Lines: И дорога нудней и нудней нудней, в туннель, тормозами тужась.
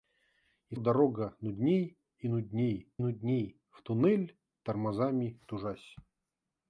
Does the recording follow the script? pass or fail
pass